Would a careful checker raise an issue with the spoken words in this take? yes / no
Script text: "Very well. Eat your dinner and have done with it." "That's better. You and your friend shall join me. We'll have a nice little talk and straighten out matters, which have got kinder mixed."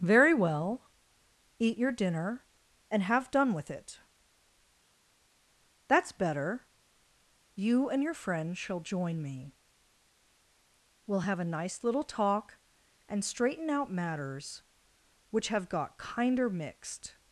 no